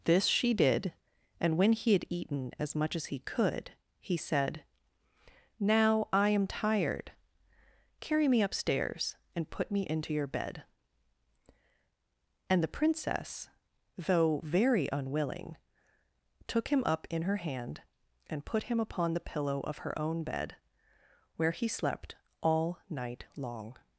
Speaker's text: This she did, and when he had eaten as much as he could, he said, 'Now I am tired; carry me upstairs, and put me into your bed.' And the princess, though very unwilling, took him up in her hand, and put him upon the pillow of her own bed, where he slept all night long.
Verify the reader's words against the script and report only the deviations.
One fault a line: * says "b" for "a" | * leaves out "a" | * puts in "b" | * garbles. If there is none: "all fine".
all fine